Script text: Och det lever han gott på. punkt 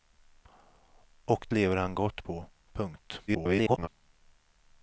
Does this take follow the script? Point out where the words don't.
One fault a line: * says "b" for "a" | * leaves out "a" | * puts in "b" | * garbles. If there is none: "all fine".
* leaves out "det"
* garbles